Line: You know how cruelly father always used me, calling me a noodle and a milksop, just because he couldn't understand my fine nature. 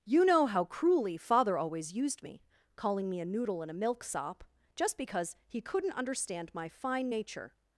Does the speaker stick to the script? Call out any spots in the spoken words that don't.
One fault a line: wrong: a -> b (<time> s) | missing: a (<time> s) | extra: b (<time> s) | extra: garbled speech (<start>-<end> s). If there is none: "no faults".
no faults